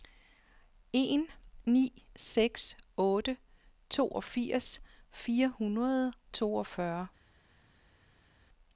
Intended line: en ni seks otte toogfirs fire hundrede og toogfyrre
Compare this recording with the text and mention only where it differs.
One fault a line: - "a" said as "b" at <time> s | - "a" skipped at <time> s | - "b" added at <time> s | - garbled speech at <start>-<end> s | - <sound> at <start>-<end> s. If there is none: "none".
- "og" skipped at 6.1 s